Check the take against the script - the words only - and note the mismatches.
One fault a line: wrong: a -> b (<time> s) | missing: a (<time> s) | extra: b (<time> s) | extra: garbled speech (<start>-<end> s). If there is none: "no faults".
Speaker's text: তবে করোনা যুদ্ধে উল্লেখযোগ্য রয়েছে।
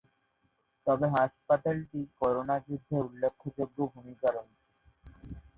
extra: হাসপাতালটি (1.1 s)
extra: ভূমিকা (3.9 s)